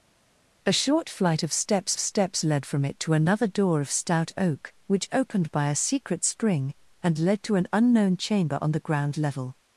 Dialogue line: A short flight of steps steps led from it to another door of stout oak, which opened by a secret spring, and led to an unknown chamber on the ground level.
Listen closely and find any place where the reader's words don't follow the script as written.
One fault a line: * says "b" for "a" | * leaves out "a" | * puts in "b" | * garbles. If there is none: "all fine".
all fine